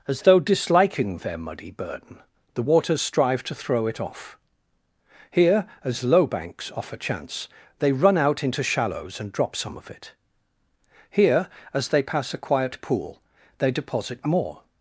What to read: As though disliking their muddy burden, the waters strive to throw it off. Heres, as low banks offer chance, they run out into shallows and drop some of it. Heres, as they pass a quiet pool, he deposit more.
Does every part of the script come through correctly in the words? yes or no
no